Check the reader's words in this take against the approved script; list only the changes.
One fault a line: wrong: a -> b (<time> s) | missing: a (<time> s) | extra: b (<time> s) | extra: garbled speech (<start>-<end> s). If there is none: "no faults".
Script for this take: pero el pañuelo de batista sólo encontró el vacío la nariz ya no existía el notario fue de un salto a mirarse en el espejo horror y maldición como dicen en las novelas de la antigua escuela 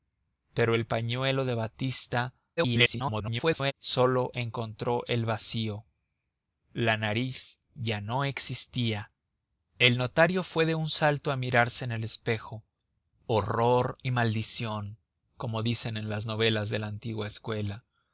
extra: garbled speech (2.6-3.7 s)